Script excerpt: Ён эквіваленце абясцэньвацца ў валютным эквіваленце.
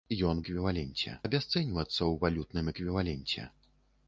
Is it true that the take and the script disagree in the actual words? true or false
false